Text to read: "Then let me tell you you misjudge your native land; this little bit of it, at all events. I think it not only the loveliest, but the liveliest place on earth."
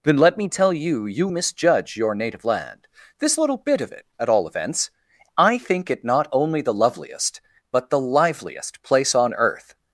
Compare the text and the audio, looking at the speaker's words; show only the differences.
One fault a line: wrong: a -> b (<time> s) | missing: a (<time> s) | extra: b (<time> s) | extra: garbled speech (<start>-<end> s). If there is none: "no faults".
no faults